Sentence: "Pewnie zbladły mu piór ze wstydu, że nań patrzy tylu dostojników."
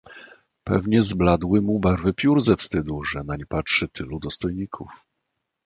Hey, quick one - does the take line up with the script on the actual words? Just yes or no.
no